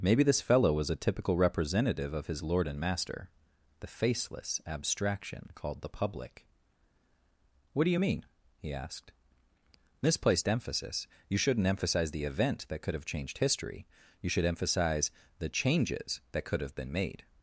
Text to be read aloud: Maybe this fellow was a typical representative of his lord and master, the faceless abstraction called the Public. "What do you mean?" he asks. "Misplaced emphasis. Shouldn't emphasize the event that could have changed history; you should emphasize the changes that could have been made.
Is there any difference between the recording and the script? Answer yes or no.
yes